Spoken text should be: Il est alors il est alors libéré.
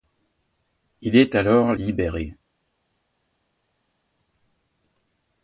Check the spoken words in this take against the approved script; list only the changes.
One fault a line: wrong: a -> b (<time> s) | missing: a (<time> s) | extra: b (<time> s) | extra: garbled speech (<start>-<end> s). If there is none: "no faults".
missing: il est alors (1.8 s)